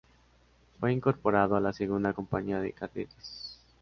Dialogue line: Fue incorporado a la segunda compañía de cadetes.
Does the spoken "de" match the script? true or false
true